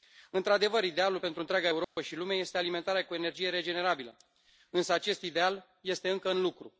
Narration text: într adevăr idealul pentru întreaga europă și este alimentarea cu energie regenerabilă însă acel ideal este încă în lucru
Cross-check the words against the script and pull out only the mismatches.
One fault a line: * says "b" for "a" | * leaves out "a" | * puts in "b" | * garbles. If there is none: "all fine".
* puts in "lume"
* says "acest" for "acel"